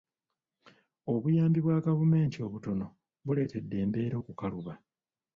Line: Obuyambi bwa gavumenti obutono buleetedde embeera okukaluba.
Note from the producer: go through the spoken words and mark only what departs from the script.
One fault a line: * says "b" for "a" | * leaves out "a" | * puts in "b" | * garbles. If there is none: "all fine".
all fine